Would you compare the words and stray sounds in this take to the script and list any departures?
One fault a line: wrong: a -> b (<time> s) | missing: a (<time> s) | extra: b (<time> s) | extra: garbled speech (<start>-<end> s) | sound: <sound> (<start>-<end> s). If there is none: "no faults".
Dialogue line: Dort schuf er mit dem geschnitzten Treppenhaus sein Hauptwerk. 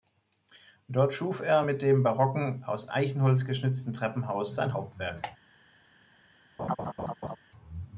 extra: barocken aus Eichenholz (2.0 s)
sound: laugh (6.6-7.4 s)